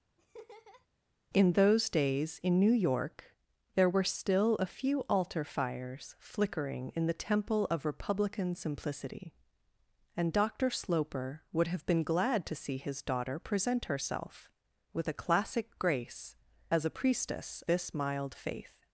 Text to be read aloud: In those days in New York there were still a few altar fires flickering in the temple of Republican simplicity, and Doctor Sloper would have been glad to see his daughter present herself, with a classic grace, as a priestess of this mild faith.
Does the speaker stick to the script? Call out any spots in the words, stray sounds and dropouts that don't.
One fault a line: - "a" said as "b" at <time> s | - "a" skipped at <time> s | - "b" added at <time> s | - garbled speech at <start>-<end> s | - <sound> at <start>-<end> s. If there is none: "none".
- laugh at 0.2-0.9 s
- "of" skipped at 17.6 s